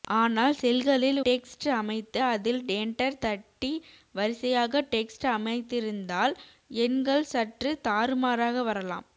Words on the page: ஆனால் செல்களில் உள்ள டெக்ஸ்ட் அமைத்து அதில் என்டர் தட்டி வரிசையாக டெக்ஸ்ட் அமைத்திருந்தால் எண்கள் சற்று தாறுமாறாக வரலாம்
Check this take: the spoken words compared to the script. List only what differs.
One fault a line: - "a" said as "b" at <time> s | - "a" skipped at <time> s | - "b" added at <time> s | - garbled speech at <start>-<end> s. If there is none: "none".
- "உள்ள" skipped at 1.2 s